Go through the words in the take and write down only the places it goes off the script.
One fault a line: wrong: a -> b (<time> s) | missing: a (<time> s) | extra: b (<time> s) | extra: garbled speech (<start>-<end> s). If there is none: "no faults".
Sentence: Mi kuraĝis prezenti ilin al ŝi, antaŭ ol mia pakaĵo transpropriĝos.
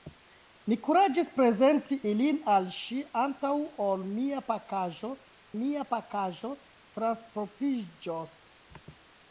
extra: mia pakaĵo (5.6 s)